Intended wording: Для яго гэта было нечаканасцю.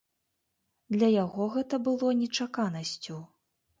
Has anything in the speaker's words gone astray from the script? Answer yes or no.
no